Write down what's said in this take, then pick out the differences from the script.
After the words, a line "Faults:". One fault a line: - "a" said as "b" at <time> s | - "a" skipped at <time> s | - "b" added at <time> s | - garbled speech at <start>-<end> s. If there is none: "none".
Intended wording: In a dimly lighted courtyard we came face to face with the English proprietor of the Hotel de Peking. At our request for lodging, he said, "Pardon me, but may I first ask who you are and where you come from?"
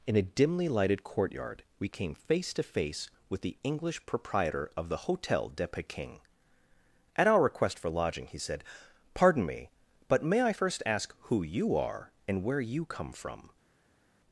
In a dimly lighted courtyard we came face to face with the English proprietor of the Hotel de Peking. At our request for lodging, he said, "Pardon me, but may I first ask who you are and where you come from?"
Faults:
none